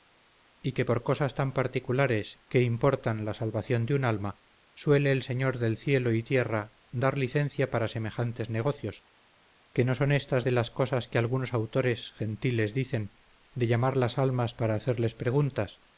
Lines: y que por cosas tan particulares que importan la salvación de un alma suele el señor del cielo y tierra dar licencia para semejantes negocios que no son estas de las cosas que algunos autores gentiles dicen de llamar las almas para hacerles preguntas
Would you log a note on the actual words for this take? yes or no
no